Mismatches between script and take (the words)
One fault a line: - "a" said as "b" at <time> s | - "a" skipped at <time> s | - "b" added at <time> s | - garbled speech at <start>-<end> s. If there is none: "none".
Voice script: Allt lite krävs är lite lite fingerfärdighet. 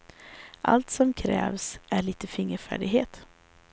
- "lite" said as "som" at 0.9 s
- "lite" skipped at 2.3 s